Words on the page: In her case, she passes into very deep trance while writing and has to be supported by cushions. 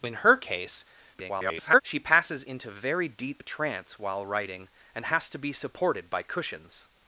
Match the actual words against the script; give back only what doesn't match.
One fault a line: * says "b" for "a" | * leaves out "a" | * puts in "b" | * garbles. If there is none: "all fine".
* garbles